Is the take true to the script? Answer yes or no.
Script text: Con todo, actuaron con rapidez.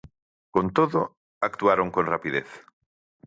yes